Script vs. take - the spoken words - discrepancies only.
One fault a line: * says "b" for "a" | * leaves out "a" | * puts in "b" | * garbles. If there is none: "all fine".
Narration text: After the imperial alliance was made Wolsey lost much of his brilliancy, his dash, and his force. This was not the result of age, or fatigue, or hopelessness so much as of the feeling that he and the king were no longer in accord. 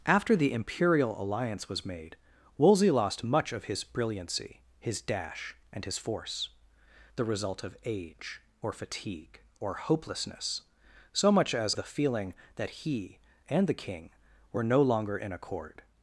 * leaves out "This was not"
* leaves out "of"